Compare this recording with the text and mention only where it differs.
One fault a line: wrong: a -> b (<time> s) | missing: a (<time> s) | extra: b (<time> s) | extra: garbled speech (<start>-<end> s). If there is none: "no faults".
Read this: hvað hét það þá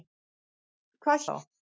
missing: hét það (1.3 s)